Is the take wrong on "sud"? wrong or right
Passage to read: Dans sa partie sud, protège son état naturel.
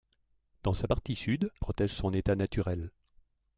right